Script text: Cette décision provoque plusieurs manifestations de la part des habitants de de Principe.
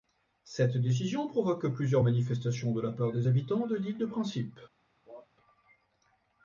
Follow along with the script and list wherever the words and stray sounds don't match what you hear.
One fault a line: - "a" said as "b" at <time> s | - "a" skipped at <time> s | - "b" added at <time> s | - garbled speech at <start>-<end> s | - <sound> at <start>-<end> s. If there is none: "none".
- "l'île" added at 3.7 s
- cough at 5.1-5.3 s